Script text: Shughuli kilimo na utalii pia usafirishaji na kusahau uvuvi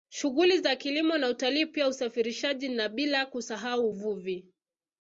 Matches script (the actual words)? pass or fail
fail